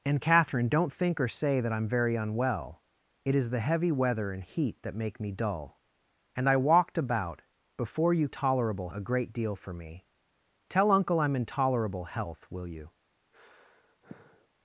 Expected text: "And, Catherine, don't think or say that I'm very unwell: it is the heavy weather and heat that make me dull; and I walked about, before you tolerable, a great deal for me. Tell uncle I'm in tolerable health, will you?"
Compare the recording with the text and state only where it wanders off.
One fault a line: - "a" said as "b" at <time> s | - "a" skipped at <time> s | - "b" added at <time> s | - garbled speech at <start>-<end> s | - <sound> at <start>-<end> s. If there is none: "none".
- sigh at 13.3-14.5 s